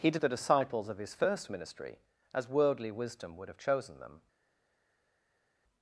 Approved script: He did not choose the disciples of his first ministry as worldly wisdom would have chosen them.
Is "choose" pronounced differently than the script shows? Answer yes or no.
yes